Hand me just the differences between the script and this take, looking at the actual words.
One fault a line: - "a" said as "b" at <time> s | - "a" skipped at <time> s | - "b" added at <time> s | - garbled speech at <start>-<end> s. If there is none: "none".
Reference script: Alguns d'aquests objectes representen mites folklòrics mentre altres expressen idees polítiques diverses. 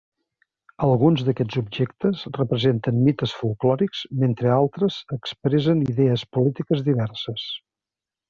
none